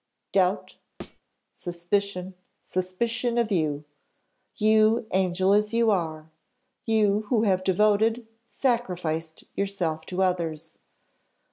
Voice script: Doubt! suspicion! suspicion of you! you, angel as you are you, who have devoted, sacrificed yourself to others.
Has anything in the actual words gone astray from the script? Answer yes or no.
no